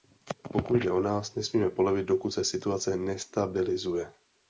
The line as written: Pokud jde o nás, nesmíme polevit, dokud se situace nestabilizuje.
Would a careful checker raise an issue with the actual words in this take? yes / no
no